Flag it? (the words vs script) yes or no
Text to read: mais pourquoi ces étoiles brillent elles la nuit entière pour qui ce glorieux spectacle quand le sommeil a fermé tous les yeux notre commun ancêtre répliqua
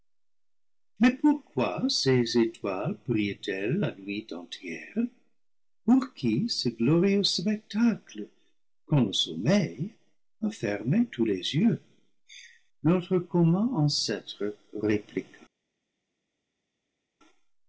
no